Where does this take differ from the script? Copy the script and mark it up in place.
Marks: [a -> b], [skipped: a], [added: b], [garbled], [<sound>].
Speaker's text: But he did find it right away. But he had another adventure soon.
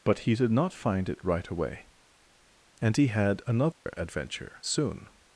But he did [added: not] find it right away. [But -> And] he had another [dropout] adventure soon.